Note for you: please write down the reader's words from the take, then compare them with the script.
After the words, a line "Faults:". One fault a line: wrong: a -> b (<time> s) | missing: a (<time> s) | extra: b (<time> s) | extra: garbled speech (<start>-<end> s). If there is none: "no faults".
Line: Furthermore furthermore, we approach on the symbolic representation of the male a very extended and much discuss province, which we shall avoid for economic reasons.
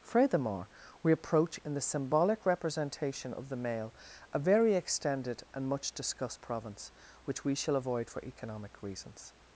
Furthermore, we approach in the symbolic representation of the male a very extended and much discussed province, which we shall avoid for economic reasons.
Faults:
missing: furthermore (0.7 s)
wrong: on -> in (1.6 s)
wrong: discuss -> discussed (5.9 s)